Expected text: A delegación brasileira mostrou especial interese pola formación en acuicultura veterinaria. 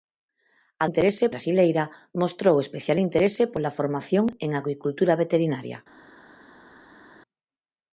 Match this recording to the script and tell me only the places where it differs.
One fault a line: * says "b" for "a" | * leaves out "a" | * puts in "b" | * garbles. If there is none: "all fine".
* says "interese" for "delegación"